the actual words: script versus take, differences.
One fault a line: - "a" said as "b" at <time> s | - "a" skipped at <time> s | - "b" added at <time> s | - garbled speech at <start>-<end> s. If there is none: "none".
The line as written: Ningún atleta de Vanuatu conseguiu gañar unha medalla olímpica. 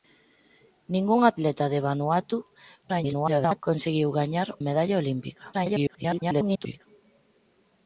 - garbled speech at 2.8-3.6 s
- "unha" skipped at 4.5 s
- garbled speech at 5.5-6.9 s